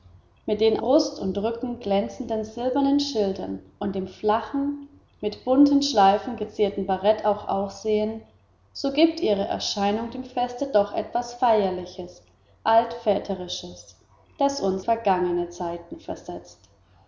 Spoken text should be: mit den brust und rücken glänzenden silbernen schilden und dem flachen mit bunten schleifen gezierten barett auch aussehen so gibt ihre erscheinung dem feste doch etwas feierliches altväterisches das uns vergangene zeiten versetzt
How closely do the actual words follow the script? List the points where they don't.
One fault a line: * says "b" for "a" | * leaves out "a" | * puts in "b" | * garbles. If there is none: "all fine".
all fine